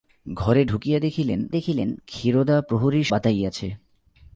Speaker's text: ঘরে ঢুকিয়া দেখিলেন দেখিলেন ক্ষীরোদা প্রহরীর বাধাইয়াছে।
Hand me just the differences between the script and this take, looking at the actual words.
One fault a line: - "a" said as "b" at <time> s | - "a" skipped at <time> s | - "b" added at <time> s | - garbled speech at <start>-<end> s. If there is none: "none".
none